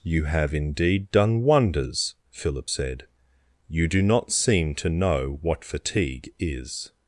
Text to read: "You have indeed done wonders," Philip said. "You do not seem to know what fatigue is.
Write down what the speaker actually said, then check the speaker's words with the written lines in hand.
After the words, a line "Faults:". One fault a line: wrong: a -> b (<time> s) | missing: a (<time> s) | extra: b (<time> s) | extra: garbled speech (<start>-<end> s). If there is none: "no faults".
"You have indeed done wonders," Philip said. "You do not seem to know what fatigue is.
Faults:
no faults